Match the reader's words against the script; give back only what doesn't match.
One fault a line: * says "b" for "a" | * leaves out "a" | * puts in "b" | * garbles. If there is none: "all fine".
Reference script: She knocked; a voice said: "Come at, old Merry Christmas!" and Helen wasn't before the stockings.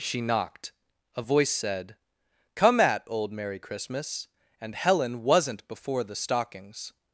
all fine